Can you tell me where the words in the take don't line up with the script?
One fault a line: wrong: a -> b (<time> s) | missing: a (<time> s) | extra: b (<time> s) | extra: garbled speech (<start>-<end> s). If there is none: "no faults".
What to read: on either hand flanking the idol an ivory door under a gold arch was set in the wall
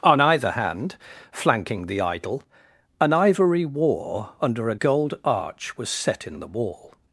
wrong: door -> war (3.6 s)